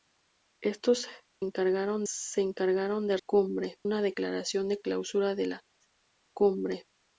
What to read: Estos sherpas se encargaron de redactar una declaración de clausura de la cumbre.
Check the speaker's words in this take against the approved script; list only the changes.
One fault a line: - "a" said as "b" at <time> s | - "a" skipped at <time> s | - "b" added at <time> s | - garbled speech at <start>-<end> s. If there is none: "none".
- "sherpas" said as "encargaron" at 1.4 s
- "redactar" said as "cumbre" at 3.3 s